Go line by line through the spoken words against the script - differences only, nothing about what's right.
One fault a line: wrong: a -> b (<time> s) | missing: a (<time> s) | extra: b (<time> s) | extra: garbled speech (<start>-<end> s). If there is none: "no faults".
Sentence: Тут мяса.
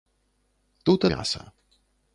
no faults